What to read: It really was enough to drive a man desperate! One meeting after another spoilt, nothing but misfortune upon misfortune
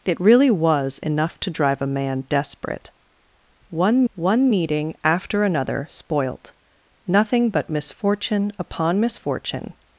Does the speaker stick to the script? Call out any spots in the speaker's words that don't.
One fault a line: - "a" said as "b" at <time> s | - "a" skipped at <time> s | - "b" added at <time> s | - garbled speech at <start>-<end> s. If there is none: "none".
- "one" added at 4.1 s